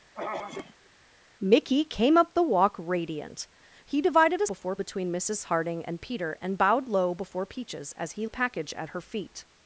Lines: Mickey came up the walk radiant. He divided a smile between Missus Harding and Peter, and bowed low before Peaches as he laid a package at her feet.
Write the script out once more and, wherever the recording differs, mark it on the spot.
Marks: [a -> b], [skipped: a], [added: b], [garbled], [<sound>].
[throat clearing] Mickey came up the walk radiant. He divided a [smile -> before] between Missus Harding and Peter, and bowed low before Peaches as he [skipped: laid] a package at her feet.